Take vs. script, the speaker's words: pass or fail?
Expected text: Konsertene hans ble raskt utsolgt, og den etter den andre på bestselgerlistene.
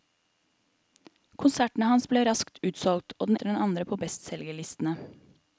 pass